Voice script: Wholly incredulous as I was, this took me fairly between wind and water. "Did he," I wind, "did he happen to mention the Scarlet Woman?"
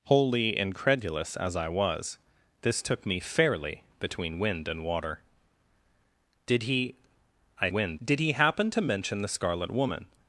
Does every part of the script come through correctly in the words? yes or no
yes